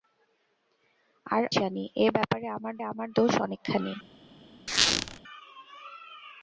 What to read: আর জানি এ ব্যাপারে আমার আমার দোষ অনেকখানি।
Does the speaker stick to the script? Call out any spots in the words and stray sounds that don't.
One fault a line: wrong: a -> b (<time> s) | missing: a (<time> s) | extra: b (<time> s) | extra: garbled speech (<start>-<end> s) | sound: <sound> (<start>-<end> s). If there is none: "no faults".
sound: squeak (4.7-5.2 s)